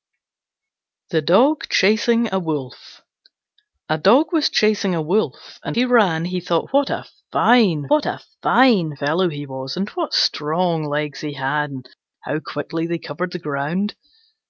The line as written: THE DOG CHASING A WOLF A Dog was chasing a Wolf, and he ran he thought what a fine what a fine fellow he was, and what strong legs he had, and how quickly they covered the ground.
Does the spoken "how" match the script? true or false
true